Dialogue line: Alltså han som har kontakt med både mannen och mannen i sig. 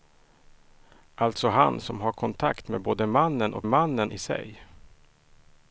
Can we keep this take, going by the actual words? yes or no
yes